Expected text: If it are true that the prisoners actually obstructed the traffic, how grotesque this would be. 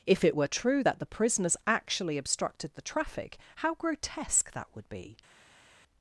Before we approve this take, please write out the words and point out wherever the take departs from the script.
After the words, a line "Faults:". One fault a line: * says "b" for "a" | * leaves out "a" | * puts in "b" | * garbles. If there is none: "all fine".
If it were true that the prisoners actually obstructed the traffic, how grotesque that would be.
Faults:
* says "were" for "are"
* says "that" for "this"